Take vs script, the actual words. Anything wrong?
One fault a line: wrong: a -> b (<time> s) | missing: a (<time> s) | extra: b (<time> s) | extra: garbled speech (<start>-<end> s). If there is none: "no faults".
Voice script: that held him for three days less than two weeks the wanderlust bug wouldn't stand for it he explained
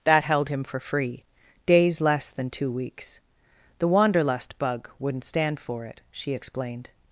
wrong: three -> free (0.8 s)
wrong: he -> she (6.1 s)